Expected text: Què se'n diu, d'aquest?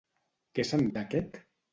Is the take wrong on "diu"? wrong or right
wrong